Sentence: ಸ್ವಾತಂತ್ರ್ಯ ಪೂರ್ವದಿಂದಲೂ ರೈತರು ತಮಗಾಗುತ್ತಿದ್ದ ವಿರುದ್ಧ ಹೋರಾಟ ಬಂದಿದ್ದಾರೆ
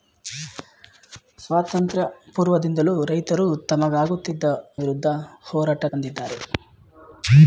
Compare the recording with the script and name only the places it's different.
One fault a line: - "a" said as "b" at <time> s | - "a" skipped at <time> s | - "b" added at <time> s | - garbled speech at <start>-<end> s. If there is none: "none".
none